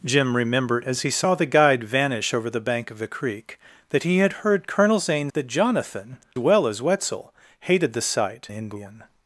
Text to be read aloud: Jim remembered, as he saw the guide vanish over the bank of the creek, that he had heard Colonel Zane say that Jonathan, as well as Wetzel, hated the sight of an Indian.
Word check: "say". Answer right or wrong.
wrong